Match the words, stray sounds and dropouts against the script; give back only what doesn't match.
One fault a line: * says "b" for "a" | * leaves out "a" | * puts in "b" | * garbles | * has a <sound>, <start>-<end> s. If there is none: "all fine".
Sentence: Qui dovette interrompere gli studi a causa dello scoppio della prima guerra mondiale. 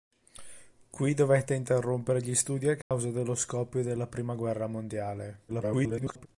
* has a dropout, 2.8-2.9 s
* garbles